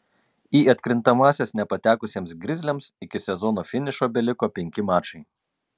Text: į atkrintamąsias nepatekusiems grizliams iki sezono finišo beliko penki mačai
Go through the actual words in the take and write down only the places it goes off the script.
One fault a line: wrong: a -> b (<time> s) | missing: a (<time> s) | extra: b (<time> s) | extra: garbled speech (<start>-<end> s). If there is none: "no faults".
no faults